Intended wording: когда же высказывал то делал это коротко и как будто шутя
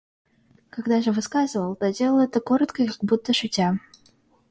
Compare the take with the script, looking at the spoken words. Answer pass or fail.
pass